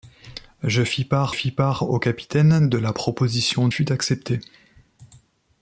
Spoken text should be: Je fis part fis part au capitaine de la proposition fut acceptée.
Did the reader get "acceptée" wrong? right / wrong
right